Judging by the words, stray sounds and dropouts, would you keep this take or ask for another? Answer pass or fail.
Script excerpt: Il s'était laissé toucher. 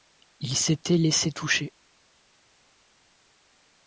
pass